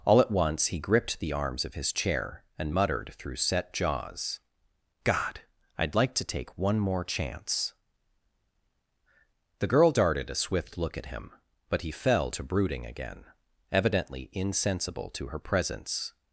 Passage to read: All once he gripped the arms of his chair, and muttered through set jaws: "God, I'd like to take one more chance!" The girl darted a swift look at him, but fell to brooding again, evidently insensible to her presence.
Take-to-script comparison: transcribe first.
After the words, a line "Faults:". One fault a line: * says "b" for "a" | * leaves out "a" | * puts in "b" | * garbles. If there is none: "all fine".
All at once he gripped the arms of his chair, and muttered through set jaws: "God, I'd like to take one more chance!" The girl darted a swift look at him, but he fell to brooding again, evidently insensible to her presence.
Faults:
* puts in "at"
* puts in "he"